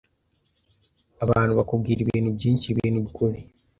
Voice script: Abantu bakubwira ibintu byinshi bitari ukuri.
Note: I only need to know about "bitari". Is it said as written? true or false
false